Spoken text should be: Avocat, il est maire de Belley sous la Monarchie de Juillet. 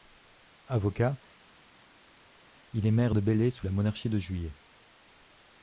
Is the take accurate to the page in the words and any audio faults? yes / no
yes